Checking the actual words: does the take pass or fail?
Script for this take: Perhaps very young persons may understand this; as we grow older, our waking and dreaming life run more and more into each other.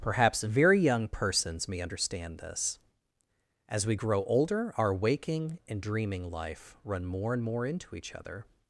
pass